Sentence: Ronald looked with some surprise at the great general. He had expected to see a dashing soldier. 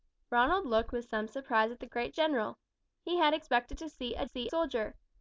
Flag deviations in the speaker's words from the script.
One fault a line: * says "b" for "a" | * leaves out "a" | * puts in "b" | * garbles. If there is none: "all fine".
* says "see" for "dashing"